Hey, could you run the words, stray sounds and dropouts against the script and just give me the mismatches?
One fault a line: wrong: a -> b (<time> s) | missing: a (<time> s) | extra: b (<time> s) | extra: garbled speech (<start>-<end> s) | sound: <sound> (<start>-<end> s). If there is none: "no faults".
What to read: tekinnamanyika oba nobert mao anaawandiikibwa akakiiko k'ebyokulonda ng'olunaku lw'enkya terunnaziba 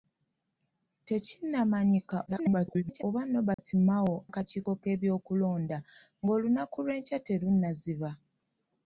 extra: garbled speech (2.3-3.0 s)
sound: dropout (3.5-3.6 s)
missing: anaawandiikibwa (4.1 s)